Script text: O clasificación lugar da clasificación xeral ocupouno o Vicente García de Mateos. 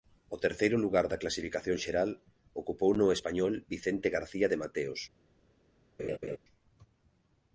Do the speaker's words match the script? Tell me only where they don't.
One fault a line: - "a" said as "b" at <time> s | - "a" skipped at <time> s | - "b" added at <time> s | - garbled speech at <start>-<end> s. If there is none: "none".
- "clasificación" said as "terceiro" at 0.5 s
- "español" added at 3.2 s